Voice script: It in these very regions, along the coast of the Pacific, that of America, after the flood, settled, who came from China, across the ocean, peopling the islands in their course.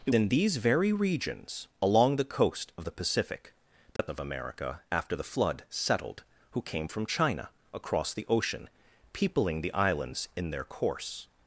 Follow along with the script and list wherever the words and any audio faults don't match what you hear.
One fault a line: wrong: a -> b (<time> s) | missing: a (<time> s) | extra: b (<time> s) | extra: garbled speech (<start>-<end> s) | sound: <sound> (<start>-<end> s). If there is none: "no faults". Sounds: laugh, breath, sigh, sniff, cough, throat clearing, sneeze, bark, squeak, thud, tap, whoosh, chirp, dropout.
sound: dropout (4.0-4.0 s)